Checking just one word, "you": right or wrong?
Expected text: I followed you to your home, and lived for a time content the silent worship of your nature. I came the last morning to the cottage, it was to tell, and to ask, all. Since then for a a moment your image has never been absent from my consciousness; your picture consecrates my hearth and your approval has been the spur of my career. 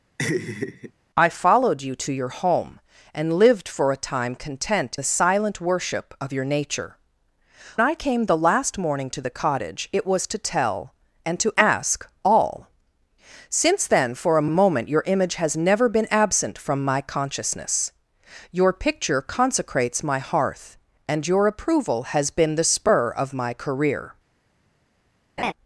right